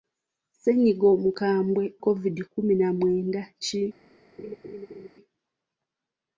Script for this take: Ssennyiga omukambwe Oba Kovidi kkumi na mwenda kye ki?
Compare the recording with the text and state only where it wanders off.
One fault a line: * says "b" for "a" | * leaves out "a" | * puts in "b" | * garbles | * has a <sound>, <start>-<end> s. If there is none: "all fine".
* leaves out "Oba"
* leaves out "kye"
* has a laugh, 4.4-5.1 s